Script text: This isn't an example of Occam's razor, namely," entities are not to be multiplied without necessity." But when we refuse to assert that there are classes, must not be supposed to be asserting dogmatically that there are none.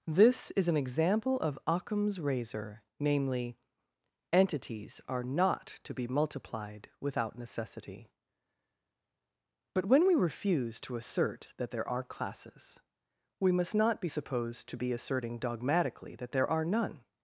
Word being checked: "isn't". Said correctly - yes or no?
no